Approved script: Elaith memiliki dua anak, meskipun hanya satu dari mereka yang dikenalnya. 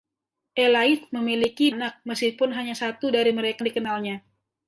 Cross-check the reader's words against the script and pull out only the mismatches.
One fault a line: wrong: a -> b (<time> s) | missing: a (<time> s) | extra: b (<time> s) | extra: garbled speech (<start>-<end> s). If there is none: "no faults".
missing: dua (1.7 s)
missing: yang (3.6 s)